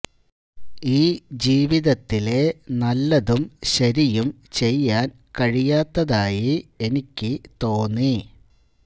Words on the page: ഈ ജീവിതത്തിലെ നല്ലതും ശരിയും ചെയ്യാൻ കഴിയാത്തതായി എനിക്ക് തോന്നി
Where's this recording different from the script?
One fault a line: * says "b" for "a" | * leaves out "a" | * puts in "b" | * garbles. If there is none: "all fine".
all fine